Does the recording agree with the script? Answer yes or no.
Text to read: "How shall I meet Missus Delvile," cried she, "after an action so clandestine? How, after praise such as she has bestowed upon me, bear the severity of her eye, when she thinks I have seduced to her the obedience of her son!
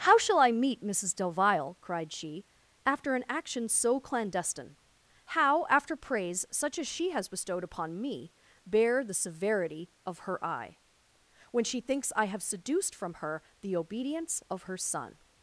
no